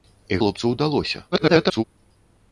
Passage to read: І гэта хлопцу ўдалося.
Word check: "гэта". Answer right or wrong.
wrong